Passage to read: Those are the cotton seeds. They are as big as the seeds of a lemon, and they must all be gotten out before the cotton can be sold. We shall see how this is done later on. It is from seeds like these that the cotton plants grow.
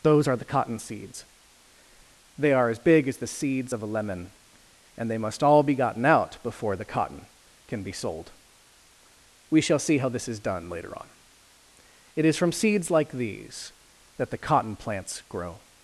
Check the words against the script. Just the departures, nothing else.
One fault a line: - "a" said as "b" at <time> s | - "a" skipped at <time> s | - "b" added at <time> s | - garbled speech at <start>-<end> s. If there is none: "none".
none